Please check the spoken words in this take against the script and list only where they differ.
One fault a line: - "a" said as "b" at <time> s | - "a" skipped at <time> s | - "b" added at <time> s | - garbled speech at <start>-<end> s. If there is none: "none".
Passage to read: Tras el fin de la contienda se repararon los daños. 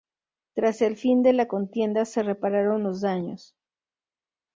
none